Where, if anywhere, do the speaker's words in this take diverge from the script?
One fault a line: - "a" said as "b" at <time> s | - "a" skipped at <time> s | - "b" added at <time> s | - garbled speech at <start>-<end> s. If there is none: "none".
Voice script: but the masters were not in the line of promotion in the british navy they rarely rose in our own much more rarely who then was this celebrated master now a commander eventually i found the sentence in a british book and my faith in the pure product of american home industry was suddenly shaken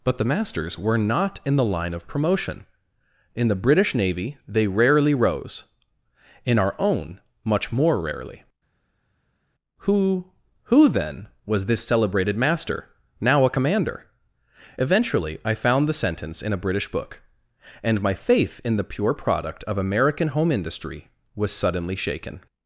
- "who" added at 10.6 s